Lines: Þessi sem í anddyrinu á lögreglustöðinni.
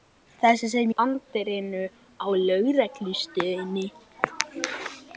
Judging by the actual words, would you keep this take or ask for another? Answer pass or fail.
pass